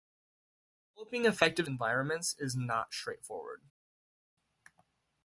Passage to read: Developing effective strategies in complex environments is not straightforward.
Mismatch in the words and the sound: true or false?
true